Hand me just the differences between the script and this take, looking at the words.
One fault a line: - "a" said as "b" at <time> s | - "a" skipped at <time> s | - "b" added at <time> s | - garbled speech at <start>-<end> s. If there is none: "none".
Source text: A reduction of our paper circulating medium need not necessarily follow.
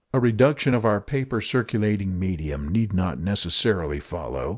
none